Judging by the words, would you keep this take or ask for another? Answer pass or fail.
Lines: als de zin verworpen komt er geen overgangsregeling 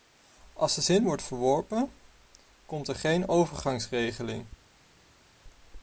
fail